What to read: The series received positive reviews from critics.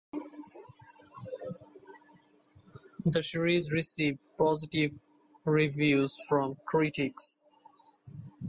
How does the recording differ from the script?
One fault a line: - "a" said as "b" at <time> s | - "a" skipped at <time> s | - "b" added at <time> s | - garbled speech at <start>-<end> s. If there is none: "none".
none